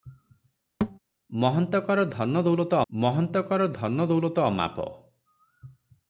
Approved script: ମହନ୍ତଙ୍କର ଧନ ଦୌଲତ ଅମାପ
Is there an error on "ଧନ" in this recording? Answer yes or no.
no